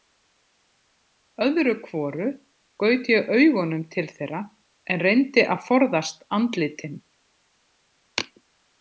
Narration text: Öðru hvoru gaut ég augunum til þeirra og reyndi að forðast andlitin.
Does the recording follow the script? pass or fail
fail